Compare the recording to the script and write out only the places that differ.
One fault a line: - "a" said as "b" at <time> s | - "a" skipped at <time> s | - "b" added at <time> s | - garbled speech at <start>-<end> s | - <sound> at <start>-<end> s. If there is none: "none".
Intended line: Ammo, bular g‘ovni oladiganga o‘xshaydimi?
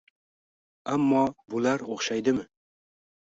- "g‘ovni oladiganga" skipped at 1.8 s